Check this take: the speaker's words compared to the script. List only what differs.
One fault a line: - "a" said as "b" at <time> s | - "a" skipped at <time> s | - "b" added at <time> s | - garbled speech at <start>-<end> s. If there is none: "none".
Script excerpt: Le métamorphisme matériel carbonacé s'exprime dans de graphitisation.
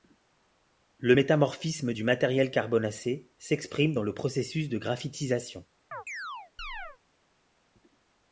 - "du" added at 1.9 s
- "le processus" added at 4.0 s